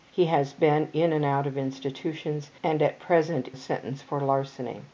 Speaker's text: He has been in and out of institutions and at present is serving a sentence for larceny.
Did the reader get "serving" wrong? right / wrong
wrong